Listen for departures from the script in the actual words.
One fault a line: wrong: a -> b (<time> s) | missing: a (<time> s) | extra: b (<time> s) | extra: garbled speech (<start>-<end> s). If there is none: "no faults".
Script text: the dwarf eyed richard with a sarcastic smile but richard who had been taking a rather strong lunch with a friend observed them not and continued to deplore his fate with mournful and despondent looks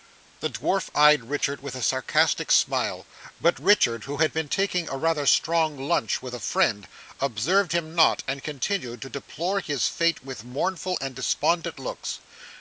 wrong: them -> him (7.7 s)